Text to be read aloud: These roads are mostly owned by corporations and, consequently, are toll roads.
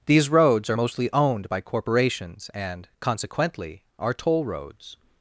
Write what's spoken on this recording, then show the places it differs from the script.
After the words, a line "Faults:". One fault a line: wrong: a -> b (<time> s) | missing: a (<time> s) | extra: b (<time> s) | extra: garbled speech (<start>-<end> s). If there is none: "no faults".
These roads are mostly owned by corporations and, consequently, are toll roads.
Faults:
no faults